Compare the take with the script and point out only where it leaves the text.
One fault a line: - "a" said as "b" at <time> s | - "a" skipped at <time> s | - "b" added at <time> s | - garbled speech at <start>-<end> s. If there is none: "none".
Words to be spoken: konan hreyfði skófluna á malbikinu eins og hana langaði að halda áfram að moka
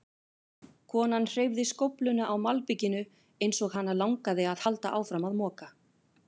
none